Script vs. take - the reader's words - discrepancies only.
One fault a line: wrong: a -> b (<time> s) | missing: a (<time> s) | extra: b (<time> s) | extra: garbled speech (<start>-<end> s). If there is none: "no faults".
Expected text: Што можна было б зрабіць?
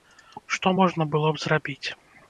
no faults